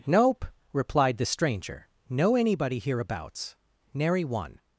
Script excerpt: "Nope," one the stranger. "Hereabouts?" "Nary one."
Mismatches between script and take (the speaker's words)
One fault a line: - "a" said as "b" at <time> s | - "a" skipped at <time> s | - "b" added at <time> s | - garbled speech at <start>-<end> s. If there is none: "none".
- "one" said as "replied" at 0.7 s
- "Know anybody" added at 2.1 s